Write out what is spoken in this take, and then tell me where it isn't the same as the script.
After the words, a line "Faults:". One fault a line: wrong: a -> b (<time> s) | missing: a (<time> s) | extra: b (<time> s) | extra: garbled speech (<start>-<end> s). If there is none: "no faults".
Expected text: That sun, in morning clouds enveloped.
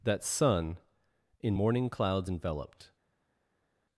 That sun, in morning clouds enveloped.
Faults:
no faults